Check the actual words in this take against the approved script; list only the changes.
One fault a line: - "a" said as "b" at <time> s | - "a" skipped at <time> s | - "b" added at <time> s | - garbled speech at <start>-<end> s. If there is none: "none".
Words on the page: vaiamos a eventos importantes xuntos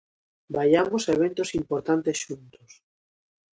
none